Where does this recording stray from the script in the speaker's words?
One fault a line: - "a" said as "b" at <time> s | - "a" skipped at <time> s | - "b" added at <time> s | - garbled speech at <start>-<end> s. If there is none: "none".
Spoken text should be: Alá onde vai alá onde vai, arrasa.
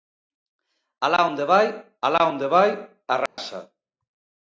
none